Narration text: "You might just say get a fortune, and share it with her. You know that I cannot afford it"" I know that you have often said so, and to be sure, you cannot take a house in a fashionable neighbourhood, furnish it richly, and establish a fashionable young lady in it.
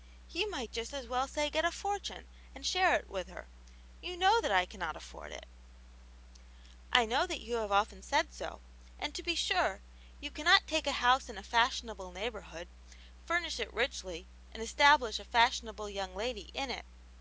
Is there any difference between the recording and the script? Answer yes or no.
yes